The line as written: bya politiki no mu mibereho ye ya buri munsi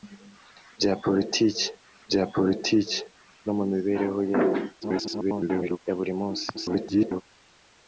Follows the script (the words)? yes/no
no